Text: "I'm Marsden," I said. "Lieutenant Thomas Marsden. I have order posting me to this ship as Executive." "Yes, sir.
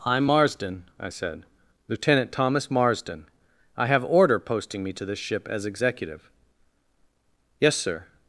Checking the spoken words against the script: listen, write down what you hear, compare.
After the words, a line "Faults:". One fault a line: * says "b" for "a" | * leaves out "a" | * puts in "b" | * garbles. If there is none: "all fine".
"I'm Marsden," I said. "Lieutenant Thomas Marsden. I have order posting me to this ship as Executive." "Yes, sir.
Faults:
all fine